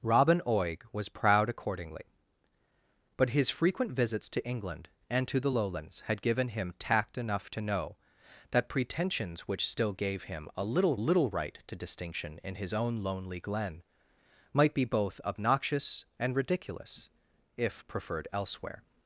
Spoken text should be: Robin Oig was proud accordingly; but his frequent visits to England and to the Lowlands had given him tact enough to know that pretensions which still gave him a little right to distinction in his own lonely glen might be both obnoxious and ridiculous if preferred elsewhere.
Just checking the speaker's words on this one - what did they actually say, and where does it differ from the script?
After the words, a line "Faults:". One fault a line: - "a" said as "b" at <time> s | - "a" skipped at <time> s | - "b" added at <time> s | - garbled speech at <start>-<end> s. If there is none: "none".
Robin Oig was proud accordingly; but his frequent visits to England and to the Lowlands had given him tact enough to know that pretensions which still gave him a little little right to distinction in his own lonely glen might be both obnoxious and ridiculous if preferred elsewhere.
Faults:
- "little" added at 10.9 s